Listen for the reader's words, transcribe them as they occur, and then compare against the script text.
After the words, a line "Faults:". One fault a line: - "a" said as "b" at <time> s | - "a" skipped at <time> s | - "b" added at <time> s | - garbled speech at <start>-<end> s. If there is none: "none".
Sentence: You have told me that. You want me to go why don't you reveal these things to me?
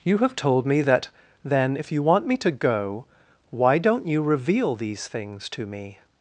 You have told me that. Then if you want me to go why don't you reveal these things to me?
Faults:
- "Then if" added at 1.4 s